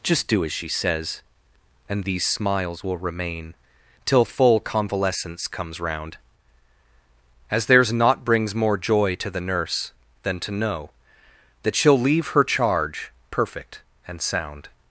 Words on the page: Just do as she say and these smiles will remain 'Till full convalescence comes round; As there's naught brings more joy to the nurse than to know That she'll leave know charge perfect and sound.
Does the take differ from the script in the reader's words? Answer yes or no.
yes